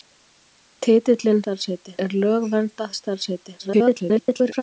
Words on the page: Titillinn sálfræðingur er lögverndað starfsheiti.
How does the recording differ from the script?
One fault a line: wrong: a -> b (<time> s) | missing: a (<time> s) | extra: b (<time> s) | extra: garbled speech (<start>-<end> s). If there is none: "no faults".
wrong: sálfræðingur -> starfsheiti (1.4 s)
extra: garbled speech (3.6-4.6 s)